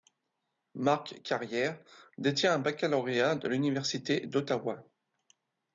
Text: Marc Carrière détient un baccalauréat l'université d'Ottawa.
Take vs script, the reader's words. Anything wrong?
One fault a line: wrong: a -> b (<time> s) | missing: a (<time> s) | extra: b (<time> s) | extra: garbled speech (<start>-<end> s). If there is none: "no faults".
extra: de (3.3 s)